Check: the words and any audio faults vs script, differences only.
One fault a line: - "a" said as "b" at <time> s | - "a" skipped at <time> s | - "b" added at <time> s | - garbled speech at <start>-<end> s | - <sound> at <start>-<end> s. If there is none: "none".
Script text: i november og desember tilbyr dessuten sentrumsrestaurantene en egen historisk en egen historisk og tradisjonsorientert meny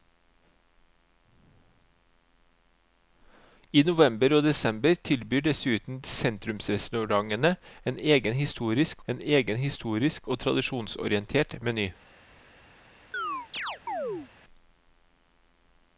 - chirp at 13.1-14.3 s